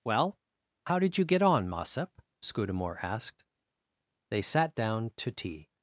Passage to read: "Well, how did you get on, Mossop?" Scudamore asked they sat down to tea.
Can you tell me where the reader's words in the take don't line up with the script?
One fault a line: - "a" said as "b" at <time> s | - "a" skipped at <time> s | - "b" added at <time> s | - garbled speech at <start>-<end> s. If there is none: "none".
none